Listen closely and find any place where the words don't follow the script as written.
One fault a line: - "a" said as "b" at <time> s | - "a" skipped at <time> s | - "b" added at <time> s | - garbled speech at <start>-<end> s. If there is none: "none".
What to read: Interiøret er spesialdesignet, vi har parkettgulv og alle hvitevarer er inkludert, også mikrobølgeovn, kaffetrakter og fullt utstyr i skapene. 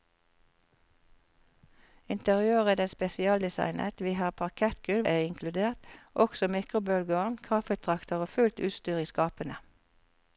- "og alle hvitevarer" skipped at 5.1 s